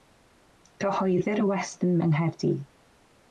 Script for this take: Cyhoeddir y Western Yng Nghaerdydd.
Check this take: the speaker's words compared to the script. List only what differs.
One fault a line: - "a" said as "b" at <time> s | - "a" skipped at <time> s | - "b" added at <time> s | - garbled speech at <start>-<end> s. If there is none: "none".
none